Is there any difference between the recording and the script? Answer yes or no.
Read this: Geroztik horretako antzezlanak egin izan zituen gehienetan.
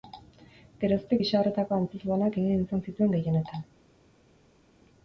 yes